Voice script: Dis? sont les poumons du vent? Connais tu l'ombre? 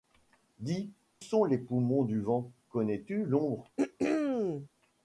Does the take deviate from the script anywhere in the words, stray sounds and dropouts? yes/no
yes